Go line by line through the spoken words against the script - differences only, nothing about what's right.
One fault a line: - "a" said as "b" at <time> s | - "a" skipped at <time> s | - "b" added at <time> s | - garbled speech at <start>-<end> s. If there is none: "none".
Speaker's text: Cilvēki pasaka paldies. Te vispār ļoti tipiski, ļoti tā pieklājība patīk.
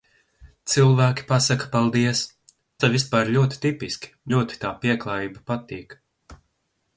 none